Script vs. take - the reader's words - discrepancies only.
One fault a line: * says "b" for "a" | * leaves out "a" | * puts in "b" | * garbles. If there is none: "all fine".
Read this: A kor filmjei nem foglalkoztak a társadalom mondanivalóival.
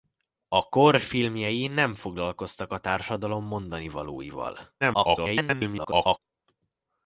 * garbles